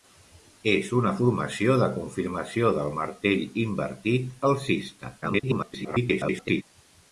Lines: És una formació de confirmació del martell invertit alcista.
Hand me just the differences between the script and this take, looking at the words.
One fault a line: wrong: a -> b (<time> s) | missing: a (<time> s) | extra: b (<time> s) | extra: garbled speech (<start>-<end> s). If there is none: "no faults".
extra: garbled speech (5.2-6.6 s)